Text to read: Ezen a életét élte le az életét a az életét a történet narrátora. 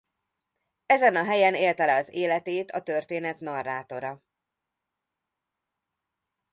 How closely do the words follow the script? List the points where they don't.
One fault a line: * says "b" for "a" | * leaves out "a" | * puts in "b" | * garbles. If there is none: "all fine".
* says "helyen" for "életét"
* leaves out "az életét a"